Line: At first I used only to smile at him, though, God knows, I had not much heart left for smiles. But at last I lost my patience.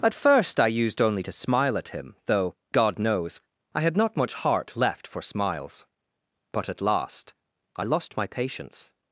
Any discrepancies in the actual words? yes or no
no